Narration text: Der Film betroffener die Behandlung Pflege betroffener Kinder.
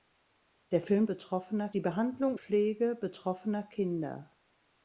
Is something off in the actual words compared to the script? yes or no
no